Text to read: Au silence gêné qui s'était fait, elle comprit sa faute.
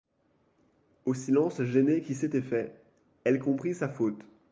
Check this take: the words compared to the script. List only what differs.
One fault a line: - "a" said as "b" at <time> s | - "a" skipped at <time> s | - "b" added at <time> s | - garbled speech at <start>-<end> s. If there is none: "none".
none